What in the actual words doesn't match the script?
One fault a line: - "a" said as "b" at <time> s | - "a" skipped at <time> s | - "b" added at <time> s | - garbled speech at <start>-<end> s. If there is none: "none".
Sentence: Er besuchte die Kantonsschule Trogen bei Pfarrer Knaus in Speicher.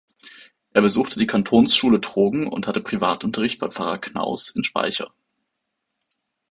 - "und hatte Privatunterricht" added at 2.5 s